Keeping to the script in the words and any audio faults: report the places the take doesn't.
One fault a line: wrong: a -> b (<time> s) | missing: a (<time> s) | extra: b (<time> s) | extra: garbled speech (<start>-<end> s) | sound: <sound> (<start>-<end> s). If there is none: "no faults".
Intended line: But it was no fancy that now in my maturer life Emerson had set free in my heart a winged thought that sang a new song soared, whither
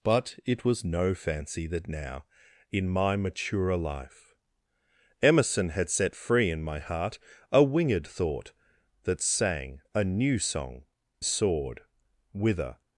no faults